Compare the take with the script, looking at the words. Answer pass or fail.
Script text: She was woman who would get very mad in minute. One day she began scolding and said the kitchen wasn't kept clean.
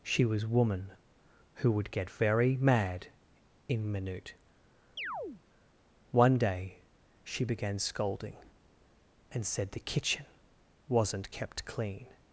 pass